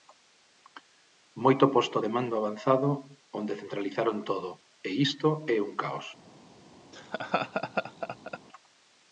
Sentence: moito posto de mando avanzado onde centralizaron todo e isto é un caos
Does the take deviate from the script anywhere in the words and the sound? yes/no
yes